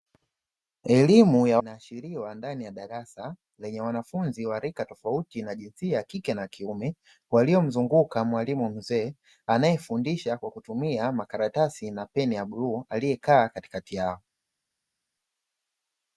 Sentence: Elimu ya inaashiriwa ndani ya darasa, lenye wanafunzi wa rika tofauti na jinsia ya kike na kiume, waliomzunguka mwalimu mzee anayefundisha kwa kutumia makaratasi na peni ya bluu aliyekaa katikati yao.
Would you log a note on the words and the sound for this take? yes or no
no